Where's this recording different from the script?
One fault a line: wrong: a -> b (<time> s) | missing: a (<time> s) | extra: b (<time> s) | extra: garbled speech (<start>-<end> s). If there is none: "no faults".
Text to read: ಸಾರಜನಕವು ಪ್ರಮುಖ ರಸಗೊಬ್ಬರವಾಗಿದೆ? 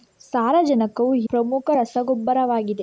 no faults